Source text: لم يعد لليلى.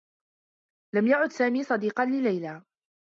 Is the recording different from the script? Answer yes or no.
yes